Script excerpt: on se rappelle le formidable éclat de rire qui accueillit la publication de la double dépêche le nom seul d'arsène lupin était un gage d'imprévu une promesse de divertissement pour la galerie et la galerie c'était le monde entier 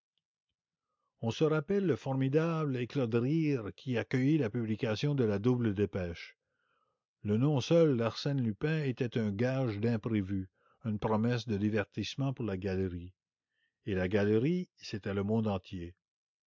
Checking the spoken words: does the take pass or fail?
pass